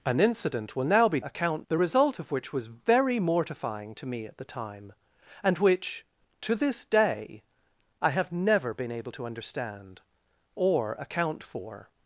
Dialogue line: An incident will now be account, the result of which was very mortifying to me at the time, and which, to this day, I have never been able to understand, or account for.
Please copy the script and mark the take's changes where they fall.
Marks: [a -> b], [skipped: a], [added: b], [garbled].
An incident will now be account, the result of which was very mortifying to me at the time, and which, to this day, I have never been able to understand, or account for.